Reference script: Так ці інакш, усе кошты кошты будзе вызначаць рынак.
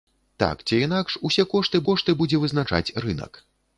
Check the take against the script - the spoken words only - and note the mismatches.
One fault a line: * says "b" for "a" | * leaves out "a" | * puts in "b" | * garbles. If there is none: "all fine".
all fine